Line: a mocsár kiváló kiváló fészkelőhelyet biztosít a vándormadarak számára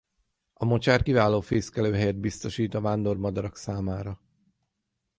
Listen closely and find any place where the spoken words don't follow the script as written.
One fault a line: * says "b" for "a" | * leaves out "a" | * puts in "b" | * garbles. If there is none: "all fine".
* leaves out "kiváló"